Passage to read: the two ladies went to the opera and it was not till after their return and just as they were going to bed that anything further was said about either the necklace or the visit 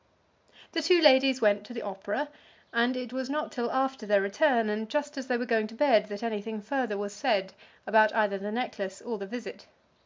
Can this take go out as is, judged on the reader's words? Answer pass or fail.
pass